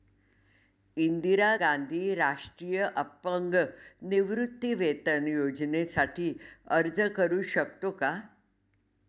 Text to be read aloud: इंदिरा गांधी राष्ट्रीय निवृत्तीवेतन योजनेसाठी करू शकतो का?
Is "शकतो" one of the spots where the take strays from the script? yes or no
no